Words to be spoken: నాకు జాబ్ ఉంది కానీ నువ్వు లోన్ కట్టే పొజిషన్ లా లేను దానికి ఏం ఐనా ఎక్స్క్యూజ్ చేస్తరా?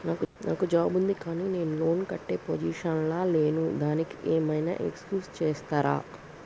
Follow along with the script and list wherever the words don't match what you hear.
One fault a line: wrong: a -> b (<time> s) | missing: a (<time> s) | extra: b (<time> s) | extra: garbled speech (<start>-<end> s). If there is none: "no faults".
wrong: నువ్వు -> నేను (1.5 s)